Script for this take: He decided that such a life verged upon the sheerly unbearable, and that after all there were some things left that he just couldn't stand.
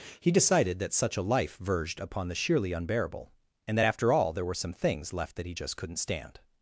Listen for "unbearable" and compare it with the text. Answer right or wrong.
right